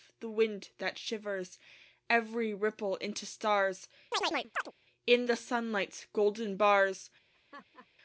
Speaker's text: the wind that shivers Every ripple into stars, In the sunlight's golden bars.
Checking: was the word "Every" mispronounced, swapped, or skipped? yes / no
no